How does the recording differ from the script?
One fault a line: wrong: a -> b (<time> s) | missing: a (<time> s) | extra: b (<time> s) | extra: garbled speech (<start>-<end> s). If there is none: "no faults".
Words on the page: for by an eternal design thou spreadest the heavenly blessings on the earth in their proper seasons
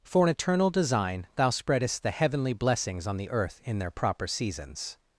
missing: by (0.2 s)